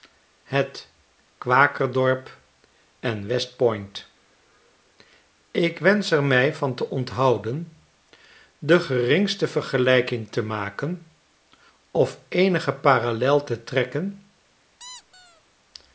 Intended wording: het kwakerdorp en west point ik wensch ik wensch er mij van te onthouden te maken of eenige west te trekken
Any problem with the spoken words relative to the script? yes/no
yes